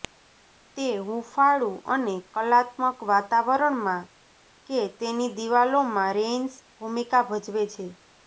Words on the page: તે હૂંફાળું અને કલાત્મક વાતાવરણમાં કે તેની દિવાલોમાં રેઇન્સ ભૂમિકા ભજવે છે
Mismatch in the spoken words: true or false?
false